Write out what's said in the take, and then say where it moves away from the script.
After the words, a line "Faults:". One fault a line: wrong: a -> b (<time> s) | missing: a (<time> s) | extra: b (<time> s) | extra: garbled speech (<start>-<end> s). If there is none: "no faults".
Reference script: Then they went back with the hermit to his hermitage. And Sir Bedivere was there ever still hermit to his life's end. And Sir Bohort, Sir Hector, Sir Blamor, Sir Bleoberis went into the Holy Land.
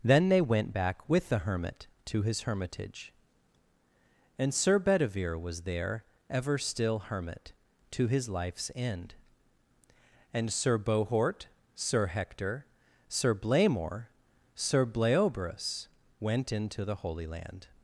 Then they went back with the hermit to his hermitage. And Sir Bedivere was there ever still hermit to his life's end. And Sir Bohort, Sir Hector, Sir Blamor, Sir Bleoberis went into the Holy Land.
Faults:
no faults